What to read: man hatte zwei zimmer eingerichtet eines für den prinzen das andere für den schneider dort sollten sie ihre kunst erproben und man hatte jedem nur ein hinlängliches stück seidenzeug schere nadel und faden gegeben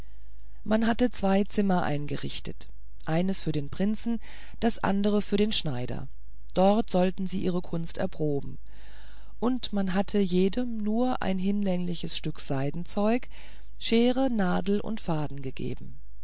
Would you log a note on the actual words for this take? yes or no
no